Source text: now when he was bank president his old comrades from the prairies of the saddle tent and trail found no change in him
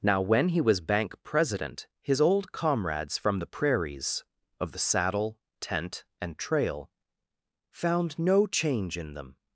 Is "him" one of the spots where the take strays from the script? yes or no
yes